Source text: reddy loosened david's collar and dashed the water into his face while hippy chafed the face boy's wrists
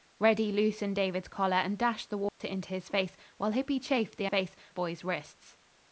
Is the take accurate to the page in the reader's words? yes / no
yes